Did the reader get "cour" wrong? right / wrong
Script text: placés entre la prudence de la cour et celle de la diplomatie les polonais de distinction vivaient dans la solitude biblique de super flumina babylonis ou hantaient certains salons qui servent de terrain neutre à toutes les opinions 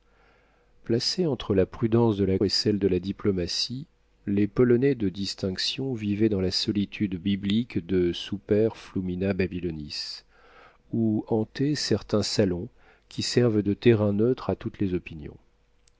wrong